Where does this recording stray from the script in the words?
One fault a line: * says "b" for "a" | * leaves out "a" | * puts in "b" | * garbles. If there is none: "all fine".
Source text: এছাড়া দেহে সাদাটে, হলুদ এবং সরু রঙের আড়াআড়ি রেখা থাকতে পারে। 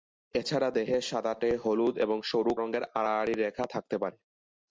all fine